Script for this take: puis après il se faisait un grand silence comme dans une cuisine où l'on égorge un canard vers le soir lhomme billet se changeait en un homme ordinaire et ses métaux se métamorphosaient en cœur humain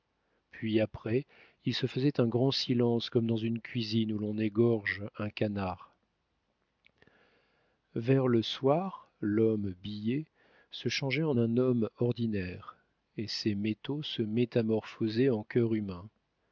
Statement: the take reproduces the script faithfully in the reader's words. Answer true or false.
true